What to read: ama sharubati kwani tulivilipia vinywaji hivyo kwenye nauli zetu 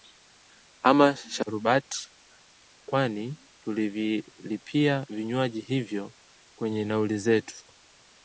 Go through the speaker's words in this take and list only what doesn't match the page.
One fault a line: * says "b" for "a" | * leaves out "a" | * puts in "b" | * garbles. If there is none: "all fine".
all fine